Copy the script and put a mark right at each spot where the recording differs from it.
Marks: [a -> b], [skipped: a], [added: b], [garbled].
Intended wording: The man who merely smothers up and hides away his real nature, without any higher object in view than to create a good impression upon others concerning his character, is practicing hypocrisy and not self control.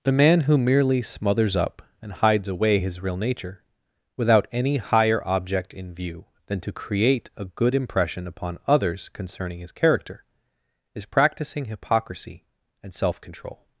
The man who merely smothers up and hides away his real nature, without any higher object in view than to create a good impression upon others concerning his character, is practicing hypocrisy and [skipped: not] self control.